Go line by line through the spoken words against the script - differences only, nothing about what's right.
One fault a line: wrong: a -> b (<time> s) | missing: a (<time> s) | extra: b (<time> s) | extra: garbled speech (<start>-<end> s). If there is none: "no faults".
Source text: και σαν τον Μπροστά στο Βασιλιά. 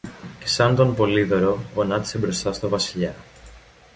extra: Πολύδωρο γονάτισε (0.9 s)